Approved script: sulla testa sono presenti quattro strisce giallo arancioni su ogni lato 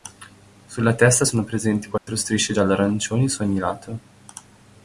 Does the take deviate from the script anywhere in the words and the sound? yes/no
yes